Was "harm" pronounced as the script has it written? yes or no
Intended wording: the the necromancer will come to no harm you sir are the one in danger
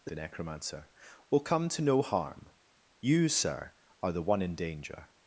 yes